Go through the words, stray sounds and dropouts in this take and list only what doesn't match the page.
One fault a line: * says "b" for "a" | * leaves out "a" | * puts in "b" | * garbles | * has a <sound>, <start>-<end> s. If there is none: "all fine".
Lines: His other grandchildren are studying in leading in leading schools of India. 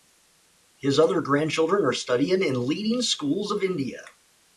* leaves out "in leading"